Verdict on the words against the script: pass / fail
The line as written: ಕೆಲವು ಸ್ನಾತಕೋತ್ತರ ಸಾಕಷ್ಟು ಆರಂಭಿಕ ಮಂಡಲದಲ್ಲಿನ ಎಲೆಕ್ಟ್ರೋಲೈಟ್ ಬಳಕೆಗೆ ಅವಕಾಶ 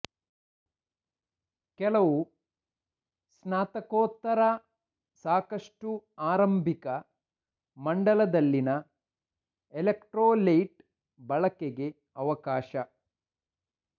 pass